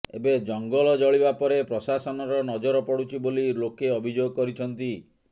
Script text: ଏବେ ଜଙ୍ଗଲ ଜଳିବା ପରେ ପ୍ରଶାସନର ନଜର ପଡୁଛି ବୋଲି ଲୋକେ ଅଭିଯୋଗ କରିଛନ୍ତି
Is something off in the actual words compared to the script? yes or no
no